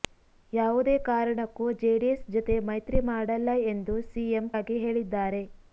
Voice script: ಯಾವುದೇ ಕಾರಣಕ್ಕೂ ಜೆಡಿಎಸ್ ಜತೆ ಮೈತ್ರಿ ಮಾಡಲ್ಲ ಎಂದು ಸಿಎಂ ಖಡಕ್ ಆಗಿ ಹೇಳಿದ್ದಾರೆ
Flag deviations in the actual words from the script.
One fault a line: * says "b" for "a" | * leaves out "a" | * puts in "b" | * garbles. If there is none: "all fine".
* leaves out "ಖಡಕ್"